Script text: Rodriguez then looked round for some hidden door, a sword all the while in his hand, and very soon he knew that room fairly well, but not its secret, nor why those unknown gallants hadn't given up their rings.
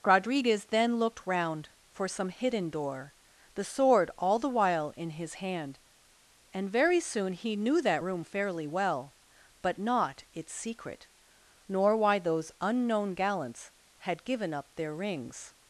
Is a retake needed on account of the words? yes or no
yes